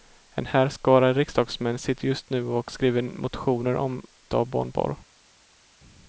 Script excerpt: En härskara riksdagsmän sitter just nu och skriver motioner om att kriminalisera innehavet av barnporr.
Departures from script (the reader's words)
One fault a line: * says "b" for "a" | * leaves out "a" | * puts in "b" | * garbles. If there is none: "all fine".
* leaves out "att kriminalisera innehavet"